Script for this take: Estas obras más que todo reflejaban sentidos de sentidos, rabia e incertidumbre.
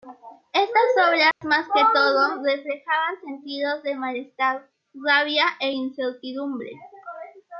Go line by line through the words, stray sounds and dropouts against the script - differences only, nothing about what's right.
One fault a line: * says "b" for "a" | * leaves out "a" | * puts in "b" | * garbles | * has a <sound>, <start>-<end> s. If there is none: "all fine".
* has a dropout, 1.3-1.4 s
* says "malestar" for "sentidos"